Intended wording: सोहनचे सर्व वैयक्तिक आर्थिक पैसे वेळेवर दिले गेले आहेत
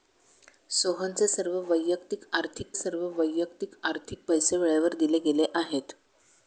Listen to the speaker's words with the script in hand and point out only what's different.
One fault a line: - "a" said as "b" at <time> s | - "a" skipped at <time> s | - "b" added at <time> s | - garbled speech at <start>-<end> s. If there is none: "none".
- "सर्व वैयक्तिक आर्थिक" added at 2.7 s